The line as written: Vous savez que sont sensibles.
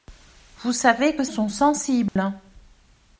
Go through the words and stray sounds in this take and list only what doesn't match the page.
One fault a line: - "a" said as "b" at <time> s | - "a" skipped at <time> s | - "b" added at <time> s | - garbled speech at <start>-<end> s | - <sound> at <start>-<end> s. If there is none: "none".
- dropout at 2.1-2.2 s